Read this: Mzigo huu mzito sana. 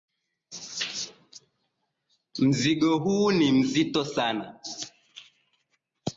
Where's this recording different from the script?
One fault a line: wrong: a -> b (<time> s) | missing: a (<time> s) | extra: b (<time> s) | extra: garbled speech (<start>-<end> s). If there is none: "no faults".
extra: ni (3.3 s)